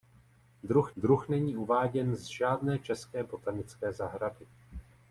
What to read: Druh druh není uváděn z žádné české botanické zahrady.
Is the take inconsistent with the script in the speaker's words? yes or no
no